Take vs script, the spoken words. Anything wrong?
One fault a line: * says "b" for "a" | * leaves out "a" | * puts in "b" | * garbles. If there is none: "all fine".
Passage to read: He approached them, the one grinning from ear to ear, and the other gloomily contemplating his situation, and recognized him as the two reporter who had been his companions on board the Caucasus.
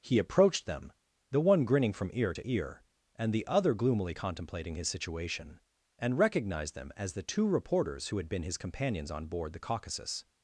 * says "them" for "him"
* says "reporters" for "reporter"